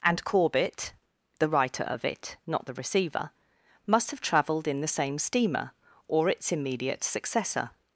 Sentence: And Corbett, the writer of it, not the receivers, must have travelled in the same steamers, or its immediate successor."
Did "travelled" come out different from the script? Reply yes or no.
no